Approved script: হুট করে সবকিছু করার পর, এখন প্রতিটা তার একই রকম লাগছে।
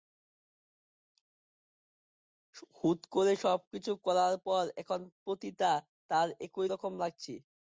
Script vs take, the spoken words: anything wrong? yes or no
no